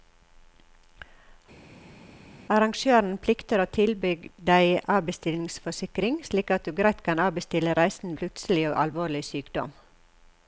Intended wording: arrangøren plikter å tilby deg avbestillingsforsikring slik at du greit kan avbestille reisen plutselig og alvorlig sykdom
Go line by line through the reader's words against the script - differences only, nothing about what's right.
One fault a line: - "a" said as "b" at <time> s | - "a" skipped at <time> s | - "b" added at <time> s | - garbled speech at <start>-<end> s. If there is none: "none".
none